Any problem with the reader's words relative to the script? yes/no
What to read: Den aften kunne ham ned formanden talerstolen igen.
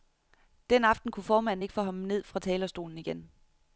yes